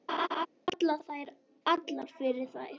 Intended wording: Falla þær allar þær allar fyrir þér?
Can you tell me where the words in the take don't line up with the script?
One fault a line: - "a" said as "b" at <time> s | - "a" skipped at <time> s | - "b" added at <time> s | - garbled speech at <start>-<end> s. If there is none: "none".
- "þær allar" skipped at 2.1 s